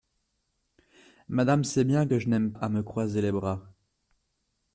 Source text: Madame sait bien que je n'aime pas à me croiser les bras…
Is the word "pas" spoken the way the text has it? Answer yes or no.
no